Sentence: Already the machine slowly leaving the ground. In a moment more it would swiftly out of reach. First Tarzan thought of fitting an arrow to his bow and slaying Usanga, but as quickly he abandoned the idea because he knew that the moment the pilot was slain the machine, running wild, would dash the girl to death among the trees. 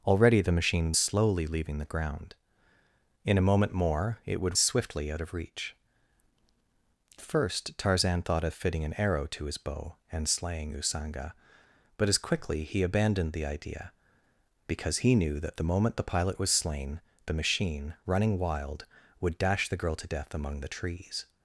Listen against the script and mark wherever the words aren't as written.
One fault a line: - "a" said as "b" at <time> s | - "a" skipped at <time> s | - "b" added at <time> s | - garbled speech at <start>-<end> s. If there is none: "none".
none